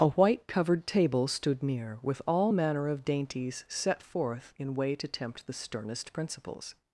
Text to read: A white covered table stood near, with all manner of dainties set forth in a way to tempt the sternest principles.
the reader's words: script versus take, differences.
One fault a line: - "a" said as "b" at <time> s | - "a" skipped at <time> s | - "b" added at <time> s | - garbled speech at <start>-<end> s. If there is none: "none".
- "a" skipped at 4.7 s